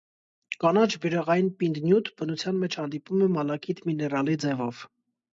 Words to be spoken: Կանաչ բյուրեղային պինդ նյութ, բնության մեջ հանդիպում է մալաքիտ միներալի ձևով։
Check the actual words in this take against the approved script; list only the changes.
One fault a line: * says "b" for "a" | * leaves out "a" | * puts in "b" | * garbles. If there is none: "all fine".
all fine